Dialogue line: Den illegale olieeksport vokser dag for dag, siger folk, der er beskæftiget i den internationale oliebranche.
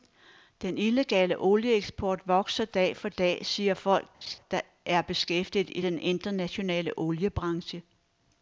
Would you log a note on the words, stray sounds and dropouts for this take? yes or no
yes